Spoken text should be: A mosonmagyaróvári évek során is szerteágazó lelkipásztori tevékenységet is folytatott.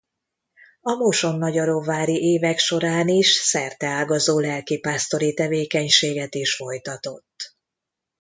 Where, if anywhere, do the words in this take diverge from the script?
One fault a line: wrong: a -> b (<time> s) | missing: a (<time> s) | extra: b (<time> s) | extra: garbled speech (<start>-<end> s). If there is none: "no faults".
no faults